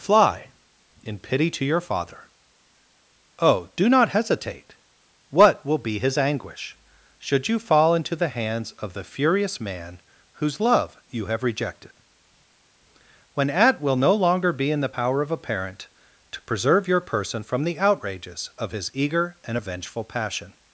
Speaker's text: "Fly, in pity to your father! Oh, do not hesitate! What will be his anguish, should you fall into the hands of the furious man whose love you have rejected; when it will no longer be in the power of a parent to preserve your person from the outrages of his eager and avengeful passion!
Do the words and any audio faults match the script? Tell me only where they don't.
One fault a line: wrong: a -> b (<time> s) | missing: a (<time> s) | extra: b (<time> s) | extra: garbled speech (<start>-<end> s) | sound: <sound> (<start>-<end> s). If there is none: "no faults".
wrong: it -> at (13.5 s)